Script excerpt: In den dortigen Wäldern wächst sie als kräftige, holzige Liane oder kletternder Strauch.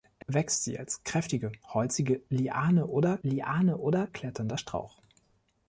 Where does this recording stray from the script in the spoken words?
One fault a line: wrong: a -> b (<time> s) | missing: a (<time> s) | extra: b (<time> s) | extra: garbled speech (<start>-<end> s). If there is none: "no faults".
missing: den dortigen Wäldern (0.2 s)
extra: Liane oder (3.2 s)